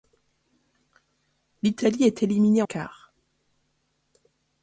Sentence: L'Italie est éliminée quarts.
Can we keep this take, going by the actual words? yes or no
yes